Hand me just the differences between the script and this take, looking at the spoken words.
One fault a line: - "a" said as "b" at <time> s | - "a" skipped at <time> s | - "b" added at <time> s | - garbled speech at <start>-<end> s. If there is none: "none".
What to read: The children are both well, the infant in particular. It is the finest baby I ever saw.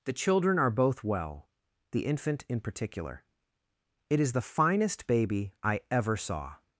none